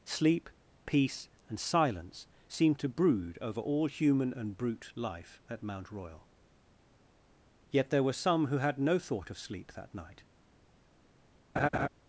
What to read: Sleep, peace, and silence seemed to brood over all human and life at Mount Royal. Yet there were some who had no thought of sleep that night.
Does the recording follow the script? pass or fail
fail